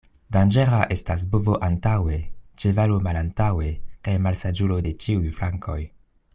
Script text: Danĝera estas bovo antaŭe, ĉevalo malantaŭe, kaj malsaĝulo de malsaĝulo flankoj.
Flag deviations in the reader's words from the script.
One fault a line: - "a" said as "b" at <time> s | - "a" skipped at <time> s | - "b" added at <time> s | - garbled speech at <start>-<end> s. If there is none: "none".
- "malsaĝulo" said as "ĉiuj" at 5.0 s